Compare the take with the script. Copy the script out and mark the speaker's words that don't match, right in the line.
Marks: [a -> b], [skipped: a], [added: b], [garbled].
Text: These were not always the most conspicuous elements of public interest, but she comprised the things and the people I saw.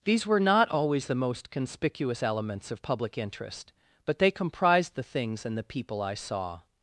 These were not always the most conspicuous elements of public interest, but [she -> they] comprised the things and the people I saw.